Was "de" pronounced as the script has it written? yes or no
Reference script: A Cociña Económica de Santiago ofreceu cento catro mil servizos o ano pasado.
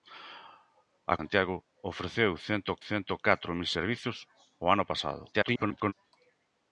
no